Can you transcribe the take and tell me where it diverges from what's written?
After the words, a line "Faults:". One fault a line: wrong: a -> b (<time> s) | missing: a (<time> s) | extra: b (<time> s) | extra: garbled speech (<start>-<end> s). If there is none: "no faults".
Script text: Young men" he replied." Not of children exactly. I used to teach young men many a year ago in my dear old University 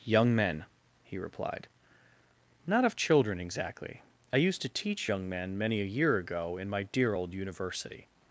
Young men" he replied." Not of children exactly. I used to teach young men many a year ago in my dear old University
Faults:
no faults